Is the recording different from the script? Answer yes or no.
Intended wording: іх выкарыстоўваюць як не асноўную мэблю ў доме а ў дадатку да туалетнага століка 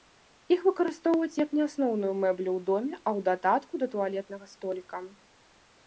no